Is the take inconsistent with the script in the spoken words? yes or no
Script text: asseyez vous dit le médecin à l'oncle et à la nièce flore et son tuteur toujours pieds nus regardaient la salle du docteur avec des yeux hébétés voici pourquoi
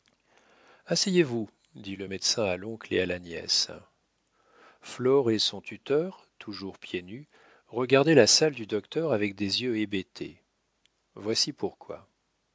no